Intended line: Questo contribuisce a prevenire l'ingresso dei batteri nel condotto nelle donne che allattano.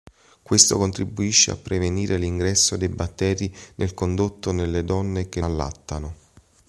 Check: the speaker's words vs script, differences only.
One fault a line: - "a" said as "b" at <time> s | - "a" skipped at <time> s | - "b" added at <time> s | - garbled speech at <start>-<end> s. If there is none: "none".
none